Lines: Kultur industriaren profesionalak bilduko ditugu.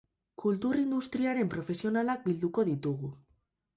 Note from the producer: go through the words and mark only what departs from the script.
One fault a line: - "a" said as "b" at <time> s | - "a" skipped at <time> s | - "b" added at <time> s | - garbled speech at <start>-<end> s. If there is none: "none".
none